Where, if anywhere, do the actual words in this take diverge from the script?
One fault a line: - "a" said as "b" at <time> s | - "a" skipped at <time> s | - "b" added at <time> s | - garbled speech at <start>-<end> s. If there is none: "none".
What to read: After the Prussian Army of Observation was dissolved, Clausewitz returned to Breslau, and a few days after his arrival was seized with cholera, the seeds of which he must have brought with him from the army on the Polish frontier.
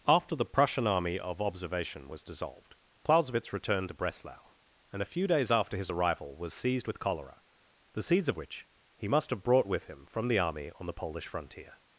none